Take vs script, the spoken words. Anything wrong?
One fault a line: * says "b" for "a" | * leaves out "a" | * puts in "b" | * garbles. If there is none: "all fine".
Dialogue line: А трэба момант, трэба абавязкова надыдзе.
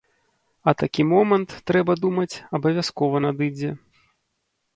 * says "такі" for "трэба"
* puts in "думаць"